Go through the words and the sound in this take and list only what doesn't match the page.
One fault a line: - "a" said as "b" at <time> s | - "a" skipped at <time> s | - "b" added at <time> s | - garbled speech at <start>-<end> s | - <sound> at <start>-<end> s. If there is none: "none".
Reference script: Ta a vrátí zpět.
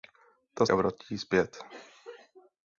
none